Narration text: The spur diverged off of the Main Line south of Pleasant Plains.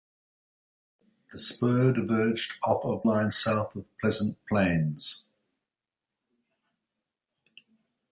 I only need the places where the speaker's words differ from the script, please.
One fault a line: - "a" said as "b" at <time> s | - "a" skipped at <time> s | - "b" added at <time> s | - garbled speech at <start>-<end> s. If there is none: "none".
- "the Main" skipped at 3.0 s